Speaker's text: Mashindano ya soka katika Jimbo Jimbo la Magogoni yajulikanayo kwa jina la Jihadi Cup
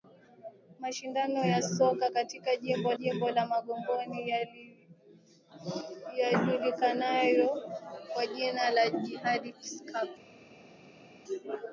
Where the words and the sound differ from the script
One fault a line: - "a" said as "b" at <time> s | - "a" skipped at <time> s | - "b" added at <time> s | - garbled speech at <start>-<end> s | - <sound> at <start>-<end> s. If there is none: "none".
none